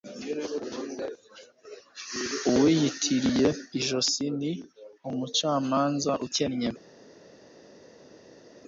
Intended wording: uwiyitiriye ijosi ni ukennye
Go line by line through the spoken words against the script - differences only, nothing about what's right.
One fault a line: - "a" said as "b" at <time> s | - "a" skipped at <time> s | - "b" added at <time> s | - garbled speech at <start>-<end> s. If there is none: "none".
- "umucamanza" added at 5.1 s